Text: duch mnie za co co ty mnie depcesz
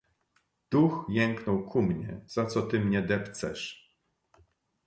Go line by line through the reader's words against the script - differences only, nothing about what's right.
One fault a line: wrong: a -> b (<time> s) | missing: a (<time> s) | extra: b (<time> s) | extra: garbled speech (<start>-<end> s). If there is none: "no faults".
extra: jęknął ku (1.1 s)
missing: co (2.6 s)